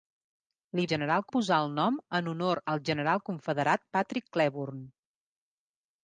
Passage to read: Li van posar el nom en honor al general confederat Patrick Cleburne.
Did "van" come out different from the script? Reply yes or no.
yes